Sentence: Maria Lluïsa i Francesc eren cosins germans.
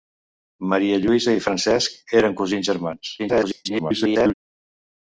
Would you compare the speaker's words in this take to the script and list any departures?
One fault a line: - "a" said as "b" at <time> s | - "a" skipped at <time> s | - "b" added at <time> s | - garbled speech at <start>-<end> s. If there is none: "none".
- garbled speech at 3.2-4.3 s